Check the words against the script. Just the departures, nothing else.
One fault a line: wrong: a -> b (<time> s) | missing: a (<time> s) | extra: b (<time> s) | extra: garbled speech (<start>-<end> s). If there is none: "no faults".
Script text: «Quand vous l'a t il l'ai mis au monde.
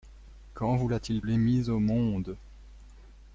no faults